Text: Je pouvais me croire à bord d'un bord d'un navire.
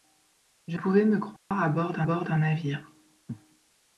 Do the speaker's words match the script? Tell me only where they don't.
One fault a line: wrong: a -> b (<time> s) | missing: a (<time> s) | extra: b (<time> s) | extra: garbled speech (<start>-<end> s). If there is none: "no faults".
no faults